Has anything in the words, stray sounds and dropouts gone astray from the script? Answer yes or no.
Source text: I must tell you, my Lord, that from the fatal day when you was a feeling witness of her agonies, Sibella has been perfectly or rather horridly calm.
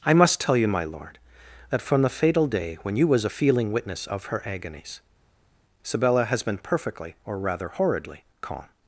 no